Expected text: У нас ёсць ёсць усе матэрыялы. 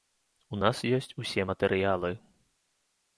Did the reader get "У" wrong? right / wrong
right